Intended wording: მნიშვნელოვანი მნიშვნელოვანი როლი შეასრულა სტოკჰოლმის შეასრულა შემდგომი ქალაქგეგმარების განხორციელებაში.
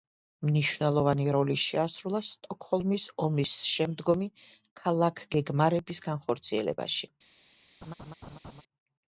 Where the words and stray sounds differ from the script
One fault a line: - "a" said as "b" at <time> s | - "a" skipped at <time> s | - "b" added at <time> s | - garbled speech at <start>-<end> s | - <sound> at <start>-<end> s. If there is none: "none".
- "მნიშვნელოვანი" skipped at 1.2 s
- "შეასრულა" said as "ომის" at 3.3 s
- laugh at 7.8-8.6 s